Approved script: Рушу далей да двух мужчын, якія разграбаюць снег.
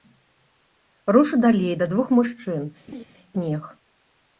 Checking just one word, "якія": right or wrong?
wrong